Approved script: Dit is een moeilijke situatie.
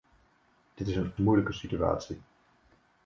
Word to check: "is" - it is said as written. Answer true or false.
true